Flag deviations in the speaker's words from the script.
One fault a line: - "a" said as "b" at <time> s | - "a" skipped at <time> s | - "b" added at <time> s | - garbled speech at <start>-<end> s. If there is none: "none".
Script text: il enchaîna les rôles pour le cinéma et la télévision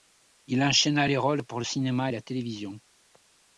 none